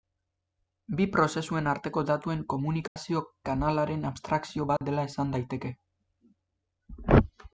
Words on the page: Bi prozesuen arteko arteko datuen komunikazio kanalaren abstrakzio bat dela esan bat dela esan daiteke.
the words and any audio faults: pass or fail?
fail